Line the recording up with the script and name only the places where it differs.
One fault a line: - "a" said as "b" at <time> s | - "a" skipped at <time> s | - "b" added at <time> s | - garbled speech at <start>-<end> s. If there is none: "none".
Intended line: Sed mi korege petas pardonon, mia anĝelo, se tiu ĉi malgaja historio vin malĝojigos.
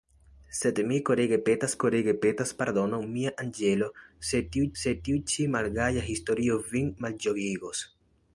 - "korege petas" added at 1.8 s
- "se tiu" added at 4.8 s